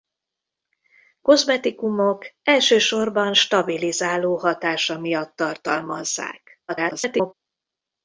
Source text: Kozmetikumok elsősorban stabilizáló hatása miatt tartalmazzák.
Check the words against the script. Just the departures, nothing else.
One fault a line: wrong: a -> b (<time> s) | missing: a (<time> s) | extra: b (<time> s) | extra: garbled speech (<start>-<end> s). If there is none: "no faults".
extra: garbled speech (6.7-7.3 s)